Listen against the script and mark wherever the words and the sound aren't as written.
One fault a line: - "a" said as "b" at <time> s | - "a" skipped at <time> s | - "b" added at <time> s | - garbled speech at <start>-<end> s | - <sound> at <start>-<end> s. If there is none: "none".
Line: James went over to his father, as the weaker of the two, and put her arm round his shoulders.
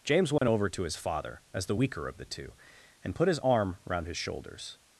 - dropout at 0.4-0.4 s
- "her" said as "his" at 3.3 s